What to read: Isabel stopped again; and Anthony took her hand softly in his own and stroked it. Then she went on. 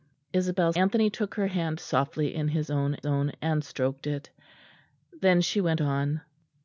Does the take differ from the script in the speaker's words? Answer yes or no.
yes